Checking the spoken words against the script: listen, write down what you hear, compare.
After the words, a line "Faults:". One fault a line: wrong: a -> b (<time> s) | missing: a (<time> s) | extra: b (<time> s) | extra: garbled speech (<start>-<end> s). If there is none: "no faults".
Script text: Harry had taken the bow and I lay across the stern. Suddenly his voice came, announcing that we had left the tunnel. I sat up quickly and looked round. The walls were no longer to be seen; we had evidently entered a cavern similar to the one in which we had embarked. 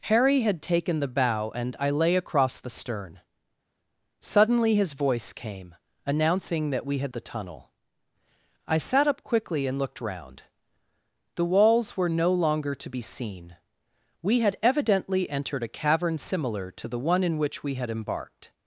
Harry had taken the bow and I lay across the stern. Suddenly his voice came, announcing that we had the tunnel. I sat up quickly and looked round. The walls were no longer to be seen; we had evidently entered a cavern similar to the one in which we had embarked.
Faults:
missing: left (7.1 s)